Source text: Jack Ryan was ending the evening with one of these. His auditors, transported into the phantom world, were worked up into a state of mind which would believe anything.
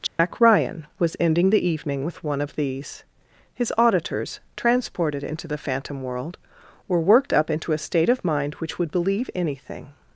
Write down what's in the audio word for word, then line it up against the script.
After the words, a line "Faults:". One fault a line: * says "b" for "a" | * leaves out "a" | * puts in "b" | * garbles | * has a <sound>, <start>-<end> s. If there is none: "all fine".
Jack Ryan was ending the evening with one of these. His auditors, transported into the phantom world, were worked up into a state of mind which would believe anything.
Faults:
* has a dropout, 0.1-0.2 s